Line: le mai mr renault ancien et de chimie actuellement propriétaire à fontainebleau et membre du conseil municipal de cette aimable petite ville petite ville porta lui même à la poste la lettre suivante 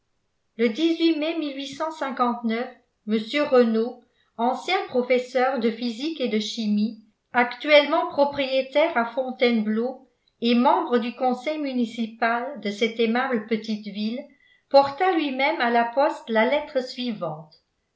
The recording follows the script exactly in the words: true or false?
false